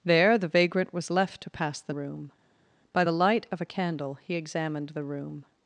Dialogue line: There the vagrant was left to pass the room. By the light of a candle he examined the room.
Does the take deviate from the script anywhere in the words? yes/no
no